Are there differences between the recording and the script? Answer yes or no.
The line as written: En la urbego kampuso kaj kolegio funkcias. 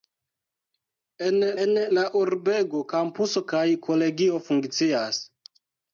yes